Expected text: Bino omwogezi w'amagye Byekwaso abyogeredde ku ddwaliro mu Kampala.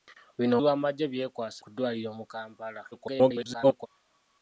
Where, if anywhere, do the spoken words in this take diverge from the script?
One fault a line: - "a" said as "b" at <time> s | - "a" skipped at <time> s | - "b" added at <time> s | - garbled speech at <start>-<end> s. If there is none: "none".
- "omwogezi" skipped at 0.6 s
- "abyogeredde" skipped at 1.6 s
- garbled speech at 2.9-3.9 s